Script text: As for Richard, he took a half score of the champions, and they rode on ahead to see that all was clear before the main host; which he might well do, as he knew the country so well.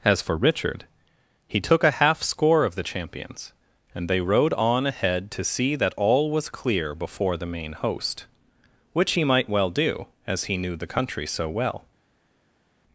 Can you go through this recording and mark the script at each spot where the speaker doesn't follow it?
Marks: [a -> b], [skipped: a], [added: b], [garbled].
As for Richard, he took a half score of the champions, and they rode on ahead to see that all was clear before the main host; which he might well do, as he knew the country so well.